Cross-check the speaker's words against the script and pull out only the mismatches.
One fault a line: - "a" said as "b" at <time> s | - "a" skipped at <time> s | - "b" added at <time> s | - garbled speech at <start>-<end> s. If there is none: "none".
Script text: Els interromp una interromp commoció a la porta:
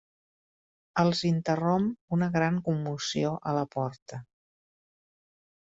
- "interromp" said as "gran" at 2.4 s